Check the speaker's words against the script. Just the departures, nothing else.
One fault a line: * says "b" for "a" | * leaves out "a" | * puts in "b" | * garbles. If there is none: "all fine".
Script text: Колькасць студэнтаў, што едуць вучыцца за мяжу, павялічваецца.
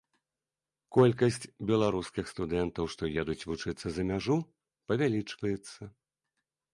* puts in "беларускіх"